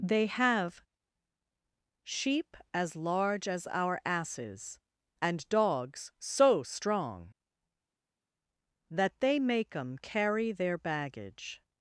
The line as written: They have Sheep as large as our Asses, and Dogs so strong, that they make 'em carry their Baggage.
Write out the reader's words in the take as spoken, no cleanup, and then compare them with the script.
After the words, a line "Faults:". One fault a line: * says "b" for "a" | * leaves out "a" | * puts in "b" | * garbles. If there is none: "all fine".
They have Sheep as large as our Asses, and Dogs so strong, that they make 'em carry their Baggage.
Faults:
all fine